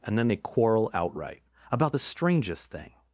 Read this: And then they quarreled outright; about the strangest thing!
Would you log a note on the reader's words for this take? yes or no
yes